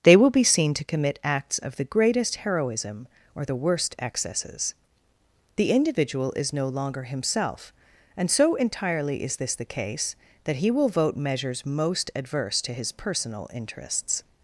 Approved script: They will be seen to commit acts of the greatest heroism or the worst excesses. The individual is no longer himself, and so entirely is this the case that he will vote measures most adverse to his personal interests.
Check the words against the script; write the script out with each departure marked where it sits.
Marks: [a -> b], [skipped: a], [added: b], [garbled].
They will be seen to commit acts of the greatest heroism or the worst excesses. The individual is no longer himself, and so entirely is this the case that he will vote measures most adverse to his personal interests.